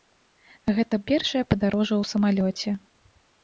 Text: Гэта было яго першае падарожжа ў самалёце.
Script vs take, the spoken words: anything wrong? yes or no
yes